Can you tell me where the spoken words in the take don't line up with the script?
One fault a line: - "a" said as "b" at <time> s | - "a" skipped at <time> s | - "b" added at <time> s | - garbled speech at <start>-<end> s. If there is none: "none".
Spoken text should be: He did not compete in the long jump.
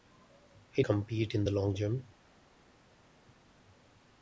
- "did not" skipped at 0.8 s